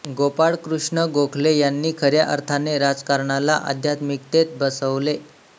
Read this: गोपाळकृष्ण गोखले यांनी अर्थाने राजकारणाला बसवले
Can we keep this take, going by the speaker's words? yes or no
no